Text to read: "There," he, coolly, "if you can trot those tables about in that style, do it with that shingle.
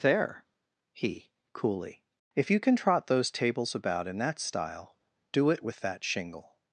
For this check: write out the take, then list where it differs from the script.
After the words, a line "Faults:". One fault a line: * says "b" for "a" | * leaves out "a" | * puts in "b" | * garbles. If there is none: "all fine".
"There," he, coolly, "if you can trot those tables about in that style, do it with that shingle.
Faults:
all fine